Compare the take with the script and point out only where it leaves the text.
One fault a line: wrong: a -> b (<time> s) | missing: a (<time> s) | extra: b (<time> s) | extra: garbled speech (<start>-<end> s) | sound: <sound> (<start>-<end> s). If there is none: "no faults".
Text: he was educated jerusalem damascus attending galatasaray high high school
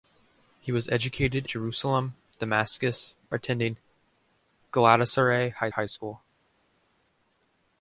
no faults